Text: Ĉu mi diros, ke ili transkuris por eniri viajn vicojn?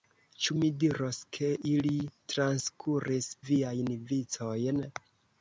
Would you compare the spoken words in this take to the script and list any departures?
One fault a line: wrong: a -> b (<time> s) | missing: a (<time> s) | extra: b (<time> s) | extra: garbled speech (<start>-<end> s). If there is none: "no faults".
missing: por eniri (3.3 s)